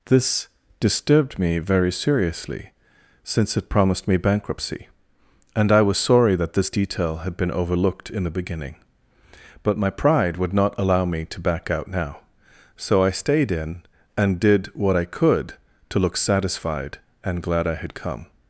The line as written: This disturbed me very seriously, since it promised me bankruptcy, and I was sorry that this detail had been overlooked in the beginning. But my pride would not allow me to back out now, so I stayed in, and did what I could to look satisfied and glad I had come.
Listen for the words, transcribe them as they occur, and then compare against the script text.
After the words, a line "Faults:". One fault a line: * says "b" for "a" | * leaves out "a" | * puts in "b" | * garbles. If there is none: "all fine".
This disturbed me very seriously, since it promised me bankruptcy, and I was sorry that this detail had been overlooked in the beginning. But my pride would not allow me to back out now, so I stayed in, and did what I could to look satisfied and glad I had come.
Faults:
all fine